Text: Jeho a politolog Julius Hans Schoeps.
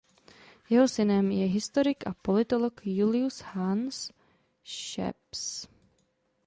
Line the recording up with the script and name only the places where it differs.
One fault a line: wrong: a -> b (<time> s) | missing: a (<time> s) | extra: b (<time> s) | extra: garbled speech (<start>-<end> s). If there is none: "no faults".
extra: synem je historik (0.9 s)